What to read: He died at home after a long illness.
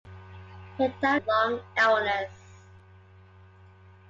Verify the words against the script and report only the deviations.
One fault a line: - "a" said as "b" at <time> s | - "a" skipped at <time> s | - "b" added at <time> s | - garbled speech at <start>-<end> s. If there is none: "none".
- "at home after" skipped at 1.2 s